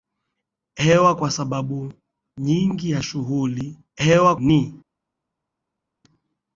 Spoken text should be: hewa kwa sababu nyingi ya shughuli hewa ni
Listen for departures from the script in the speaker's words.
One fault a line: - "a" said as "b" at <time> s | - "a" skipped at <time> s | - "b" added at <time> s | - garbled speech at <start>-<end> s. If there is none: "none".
none